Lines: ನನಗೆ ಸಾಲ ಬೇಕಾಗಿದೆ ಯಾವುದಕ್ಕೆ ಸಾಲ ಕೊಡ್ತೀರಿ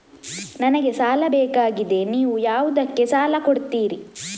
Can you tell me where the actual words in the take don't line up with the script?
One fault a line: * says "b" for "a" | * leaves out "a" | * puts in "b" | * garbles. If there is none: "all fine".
* puts in "ನೀವು"